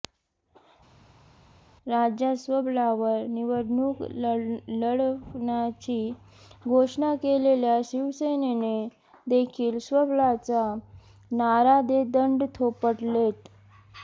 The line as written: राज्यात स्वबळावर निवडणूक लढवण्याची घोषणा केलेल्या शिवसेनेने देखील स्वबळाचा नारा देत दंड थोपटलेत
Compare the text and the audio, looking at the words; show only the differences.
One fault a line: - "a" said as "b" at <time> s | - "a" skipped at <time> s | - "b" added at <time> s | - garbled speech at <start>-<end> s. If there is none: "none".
none